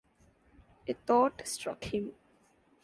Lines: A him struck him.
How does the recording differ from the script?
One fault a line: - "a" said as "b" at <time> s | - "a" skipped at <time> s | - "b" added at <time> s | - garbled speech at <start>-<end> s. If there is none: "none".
- "him" said as "thought" at 0.9 s